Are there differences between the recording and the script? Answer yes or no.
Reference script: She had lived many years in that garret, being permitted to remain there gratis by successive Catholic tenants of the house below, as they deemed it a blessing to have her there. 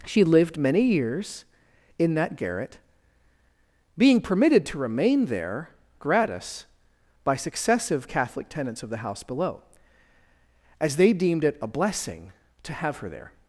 yes